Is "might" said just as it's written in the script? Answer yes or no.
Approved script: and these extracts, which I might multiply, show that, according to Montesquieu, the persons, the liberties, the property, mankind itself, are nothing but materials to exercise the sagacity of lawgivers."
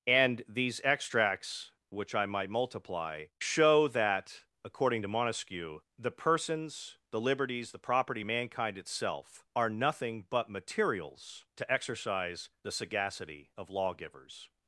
yes